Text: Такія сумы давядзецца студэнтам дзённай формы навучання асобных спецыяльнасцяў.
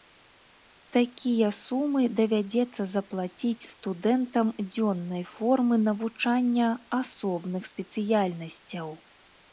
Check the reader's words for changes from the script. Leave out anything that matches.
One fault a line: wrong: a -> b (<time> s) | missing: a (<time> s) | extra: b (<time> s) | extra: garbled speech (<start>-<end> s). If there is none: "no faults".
extra: заплаціць (3.0 s)